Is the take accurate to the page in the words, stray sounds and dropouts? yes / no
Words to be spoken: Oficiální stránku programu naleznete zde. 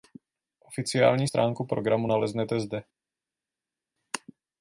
yes